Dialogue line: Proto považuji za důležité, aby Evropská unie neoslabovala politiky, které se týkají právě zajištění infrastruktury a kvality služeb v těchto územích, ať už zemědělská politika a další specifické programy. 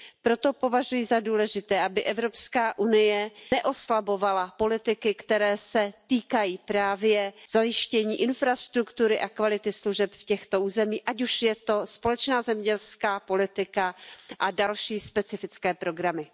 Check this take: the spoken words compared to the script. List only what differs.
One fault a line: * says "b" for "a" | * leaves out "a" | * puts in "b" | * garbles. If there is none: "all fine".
* puts in "je to společná"